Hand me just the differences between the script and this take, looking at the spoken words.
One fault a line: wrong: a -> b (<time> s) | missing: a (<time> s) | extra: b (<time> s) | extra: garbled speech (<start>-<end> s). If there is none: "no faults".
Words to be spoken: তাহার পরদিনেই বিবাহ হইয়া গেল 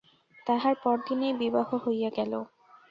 no faults